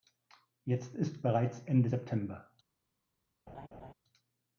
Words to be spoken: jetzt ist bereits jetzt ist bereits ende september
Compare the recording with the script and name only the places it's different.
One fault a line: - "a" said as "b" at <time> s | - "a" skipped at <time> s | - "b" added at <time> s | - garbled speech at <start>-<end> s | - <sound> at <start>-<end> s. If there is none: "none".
- "jetzt ist bereits" skipped at 1.6 s
- laugh at 3.5-3.9 s